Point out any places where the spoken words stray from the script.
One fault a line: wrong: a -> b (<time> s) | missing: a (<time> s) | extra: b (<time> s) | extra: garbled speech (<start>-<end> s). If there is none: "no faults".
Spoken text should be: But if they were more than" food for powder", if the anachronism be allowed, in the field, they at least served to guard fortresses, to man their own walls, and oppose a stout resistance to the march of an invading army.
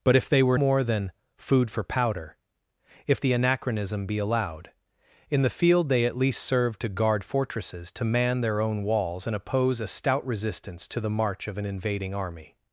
no faults